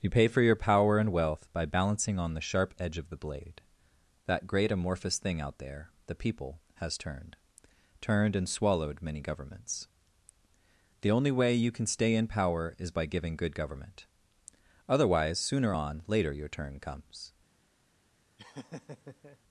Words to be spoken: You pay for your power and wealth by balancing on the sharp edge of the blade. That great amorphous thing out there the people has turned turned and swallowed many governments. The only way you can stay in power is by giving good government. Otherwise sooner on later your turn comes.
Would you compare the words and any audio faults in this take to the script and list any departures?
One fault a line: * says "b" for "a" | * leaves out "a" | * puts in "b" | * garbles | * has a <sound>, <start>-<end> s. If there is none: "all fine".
* has a laugh, 18.4-19.4 s